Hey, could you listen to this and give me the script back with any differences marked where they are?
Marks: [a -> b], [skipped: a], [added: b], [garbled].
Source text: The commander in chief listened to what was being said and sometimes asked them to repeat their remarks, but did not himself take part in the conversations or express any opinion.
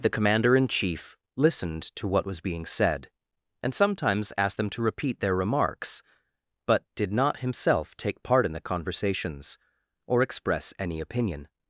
The commander in chief listened to what was being said and sometimes asked them to repeat their remarks, but did not himself take part in the conversations or express any opinion.